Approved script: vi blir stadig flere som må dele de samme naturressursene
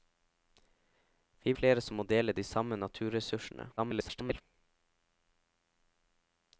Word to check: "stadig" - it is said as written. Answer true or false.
false